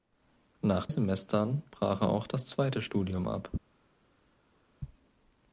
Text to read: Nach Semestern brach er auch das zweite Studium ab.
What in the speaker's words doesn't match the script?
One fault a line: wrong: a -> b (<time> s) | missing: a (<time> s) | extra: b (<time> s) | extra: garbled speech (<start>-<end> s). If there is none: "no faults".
no faults